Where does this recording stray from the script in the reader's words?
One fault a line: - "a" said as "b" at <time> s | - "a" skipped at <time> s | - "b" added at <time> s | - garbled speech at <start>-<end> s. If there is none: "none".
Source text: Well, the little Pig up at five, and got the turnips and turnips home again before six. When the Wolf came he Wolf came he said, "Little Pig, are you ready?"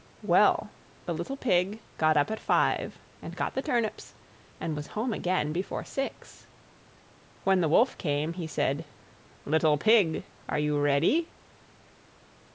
- "got" added at 2.0 s
- "turnips" said as "was" at 4.7 s
- "Wolf came he" skipped at 8.5 s